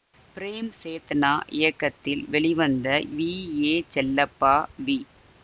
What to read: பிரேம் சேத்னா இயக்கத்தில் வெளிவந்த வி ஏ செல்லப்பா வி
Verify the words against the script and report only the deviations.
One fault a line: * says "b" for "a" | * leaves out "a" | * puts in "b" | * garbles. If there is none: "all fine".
all fine